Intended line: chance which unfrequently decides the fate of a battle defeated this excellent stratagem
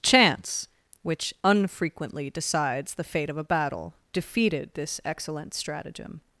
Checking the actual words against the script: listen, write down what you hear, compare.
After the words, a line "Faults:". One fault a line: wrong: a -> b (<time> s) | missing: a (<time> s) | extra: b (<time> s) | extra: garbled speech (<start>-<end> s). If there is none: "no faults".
chance which unfrequently decides the fate of a battle defeated this excellent stratagem
Faults:
no faults